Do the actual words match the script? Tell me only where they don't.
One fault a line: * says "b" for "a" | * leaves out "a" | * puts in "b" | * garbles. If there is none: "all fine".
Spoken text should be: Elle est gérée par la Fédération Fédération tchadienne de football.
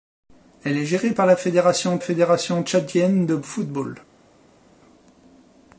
all fine